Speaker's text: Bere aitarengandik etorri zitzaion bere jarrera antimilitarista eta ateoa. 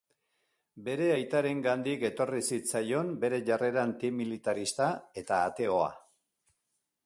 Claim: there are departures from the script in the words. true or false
false